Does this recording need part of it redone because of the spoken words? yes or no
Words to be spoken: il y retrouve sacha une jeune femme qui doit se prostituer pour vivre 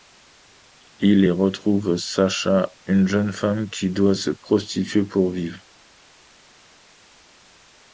no